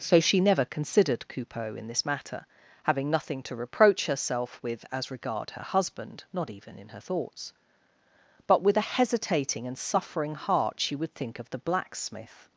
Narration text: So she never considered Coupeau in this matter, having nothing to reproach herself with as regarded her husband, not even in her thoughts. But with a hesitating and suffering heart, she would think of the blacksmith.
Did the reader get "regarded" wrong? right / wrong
wrong